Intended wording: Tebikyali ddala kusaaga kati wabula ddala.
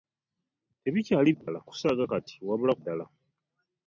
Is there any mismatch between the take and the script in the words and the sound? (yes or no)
yes